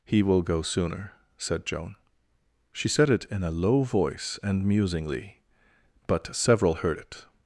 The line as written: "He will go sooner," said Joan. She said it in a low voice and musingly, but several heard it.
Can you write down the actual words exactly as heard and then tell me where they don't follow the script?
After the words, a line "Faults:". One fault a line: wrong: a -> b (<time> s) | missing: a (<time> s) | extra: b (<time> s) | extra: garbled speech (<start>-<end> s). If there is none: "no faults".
"He will go sooner," said Joan. She said it in a low voice and musingly, but several heard it.
Faults:
no faults